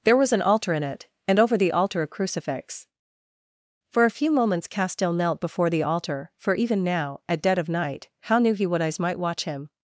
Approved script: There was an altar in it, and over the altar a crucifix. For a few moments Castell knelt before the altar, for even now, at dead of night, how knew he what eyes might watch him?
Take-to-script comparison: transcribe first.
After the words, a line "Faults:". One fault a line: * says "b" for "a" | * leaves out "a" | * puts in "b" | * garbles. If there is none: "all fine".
There was an altar in it, and over the altar a crucifix. For a few moments Castell knelt before the altar, for even now, at dead of night, how knew he what eyes might watch him?
Faults:
all fine